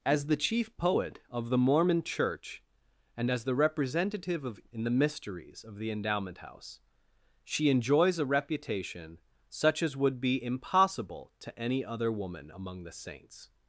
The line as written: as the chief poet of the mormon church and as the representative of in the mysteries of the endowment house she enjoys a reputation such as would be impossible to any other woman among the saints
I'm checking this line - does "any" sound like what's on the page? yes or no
yes